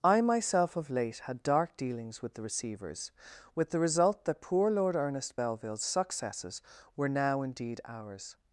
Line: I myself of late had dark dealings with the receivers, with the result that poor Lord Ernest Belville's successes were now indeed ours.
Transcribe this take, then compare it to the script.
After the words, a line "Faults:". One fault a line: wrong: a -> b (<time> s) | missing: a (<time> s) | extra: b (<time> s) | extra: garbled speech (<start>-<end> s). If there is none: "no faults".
I myself of late had dark dealings with the receivers, with the result that poor Lord Ernest Belville's successes were now indeed ours.
Faults:
no faults